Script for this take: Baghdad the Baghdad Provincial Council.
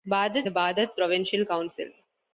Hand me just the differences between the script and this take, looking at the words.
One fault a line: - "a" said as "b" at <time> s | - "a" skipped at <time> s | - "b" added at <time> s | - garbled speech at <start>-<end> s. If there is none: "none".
none